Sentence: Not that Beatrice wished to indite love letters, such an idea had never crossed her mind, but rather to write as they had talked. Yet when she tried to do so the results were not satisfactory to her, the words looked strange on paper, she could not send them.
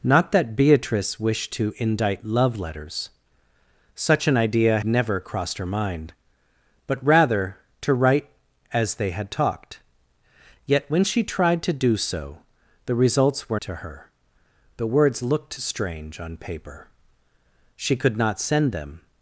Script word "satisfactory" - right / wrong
wrong